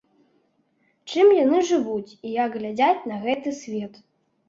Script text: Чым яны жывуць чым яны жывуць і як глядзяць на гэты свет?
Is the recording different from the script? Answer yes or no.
yes